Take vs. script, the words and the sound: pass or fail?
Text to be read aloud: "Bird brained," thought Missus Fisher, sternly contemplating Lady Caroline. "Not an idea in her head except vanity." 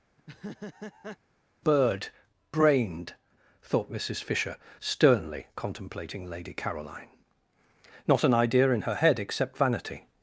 fail